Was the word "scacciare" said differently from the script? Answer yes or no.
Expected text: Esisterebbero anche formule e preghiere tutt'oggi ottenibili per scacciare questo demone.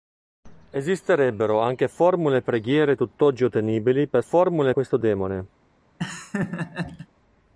yes